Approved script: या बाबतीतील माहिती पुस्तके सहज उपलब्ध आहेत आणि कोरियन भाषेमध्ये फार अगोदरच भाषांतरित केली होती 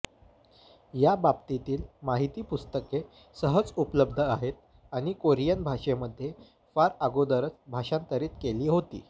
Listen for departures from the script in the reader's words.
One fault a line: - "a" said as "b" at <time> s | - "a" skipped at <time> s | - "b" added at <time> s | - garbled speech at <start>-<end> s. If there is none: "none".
none